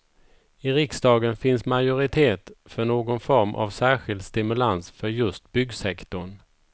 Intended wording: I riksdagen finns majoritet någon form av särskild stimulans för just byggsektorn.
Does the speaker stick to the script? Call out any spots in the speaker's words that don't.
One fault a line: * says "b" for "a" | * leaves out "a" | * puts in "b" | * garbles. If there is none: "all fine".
* puts in "för"